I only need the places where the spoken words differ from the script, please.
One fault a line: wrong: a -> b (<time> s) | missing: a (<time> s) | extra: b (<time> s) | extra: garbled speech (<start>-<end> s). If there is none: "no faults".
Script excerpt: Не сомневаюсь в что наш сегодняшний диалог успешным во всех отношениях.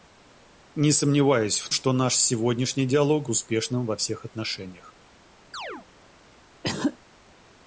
no faults